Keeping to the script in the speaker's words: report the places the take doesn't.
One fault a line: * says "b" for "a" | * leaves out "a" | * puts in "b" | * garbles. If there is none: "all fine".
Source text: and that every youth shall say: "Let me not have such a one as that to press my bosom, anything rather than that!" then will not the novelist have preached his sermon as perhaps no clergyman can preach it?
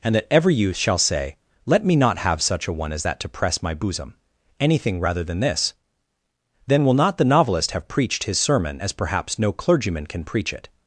* says "this" for "that"